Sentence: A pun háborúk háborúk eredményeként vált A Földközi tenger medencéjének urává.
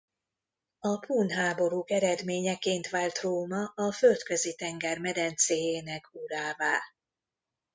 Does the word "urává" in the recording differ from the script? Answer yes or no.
no